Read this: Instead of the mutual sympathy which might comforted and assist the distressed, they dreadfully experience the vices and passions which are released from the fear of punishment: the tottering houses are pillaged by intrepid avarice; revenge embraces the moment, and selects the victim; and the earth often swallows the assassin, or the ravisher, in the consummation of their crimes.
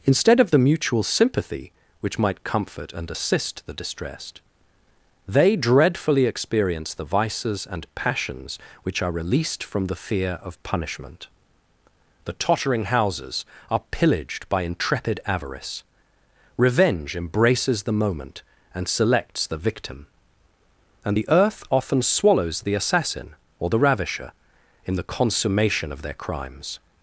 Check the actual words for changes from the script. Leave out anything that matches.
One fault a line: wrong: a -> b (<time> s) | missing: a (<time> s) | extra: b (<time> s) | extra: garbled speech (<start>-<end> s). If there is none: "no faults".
wrong: comforted -> comfort (2.4 s)